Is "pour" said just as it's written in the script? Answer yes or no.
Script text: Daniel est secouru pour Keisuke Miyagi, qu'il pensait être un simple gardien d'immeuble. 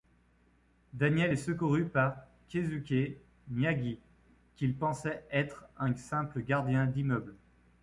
no